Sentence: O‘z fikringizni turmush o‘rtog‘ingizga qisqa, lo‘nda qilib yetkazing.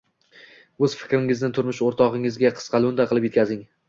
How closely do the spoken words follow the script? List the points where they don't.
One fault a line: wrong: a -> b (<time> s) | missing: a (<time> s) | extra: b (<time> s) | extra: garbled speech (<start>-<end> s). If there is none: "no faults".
no faults